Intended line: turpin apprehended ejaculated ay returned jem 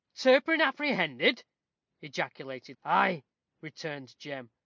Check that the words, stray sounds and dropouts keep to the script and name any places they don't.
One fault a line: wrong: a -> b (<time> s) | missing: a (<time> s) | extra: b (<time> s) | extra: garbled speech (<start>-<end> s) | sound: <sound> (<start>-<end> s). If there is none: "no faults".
no faults